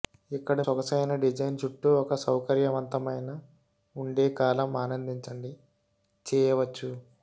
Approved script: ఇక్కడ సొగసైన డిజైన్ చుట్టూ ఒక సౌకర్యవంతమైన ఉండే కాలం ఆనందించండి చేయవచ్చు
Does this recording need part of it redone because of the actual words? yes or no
no